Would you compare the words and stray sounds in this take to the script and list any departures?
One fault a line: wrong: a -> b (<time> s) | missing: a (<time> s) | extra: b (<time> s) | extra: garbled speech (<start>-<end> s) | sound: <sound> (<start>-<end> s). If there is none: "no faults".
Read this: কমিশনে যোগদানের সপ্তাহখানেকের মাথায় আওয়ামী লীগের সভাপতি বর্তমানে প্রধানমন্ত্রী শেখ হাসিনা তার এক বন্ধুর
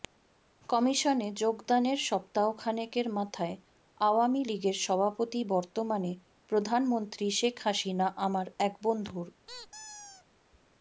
wrong: তার -> আমার (8.2 s)
sound: squeak (9.5-10.2 s)